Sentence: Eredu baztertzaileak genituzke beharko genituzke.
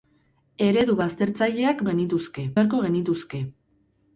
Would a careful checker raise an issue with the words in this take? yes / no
no